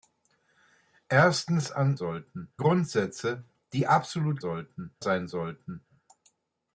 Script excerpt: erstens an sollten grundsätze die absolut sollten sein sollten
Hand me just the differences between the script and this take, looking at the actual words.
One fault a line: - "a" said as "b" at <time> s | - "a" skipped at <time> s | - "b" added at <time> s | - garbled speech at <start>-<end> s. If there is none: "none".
none